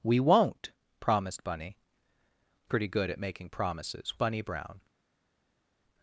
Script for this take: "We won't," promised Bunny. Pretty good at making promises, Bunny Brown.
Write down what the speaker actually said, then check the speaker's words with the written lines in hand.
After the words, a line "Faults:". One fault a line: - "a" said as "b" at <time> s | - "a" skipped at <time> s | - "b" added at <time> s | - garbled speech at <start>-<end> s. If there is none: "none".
"We won't," promised Bunny. Pretty good at making promises, Bunny Brown.
Faults:
none